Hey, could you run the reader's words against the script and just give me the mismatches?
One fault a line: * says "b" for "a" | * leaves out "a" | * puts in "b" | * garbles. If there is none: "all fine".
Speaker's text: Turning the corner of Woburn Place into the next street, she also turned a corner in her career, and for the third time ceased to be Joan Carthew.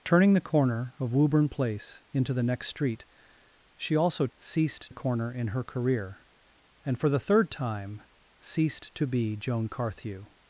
* says "ceased" for "turned"